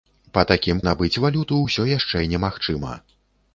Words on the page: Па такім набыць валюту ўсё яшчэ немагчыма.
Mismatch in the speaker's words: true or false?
false